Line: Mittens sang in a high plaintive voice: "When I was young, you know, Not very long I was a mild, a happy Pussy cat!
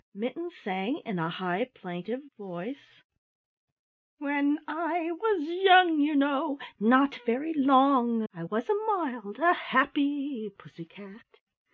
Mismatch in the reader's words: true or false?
false